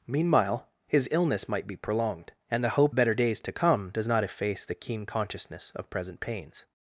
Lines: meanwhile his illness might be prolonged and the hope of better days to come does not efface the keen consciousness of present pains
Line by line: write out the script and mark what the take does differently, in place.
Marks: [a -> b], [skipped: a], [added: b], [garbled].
meanwhile his illness might be prolonged and the hope [skipped: of] better days to come does not efface the keen consciousness of present pains